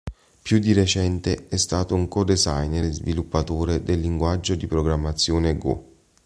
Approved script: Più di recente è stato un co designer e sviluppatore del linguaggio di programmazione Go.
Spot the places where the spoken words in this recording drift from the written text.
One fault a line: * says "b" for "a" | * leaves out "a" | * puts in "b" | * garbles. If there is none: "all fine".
all fine